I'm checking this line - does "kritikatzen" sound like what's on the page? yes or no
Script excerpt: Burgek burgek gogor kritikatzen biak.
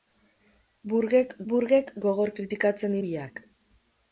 yes